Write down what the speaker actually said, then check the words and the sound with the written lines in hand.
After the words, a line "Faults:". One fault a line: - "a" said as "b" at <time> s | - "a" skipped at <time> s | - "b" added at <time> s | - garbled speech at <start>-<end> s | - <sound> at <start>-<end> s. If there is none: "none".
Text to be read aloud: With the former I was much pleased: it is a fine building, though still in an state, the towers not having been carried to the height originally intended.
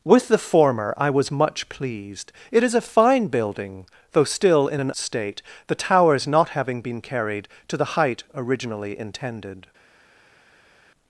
With the former I was much pleased: it is a fine building, though still in an state, the towers not having been carried to the height originally intended.
Faults:
none